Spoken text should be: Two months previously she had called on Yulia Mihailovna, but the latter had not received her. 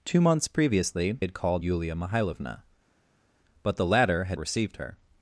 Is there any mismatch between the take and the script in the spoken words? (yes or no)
yes